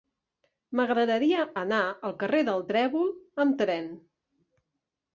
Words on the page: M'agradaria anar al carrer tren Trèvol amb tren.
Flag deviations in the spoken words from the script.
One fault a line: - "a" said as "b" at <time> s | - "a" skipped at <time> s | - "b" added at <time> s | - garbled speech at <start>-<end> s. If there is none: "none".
- "tren" said as "del" at 2.5 s